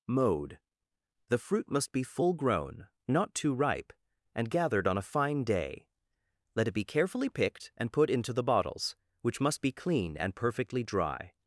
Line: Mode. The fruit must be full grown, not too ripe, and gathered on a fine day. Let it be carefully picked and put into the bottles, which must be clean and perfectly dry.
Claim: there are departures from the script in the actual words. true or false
false